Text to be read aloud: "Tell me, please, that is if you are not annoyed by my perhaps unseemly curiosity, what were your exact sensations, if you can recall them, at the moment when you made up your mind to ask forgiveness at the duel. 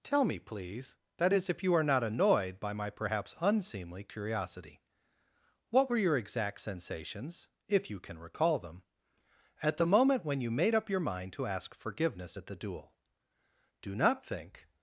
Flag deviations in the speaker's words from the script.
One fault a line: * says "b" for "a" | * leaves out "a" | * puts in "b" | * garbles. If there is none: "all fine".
* puts in "Do not think"